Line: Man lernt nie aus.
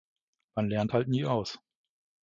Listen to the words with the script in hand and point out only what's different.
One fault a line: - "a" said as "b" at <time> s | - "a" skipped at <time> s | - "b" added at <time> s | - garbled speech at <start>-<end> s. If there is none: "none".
- "halt" added at 0.9 s